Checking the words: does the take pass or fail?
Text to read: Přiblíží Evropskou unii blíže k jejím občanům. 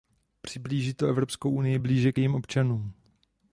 fail